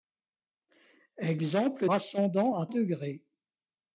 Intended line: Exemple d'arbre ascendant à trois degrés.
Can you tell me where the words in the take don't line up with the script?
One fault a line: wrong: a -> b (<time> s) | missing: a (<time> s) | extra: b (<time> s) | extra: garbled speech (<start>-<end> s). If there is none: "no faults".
missing: d'arbre (1.9 s)
missing: trois (2.7 s)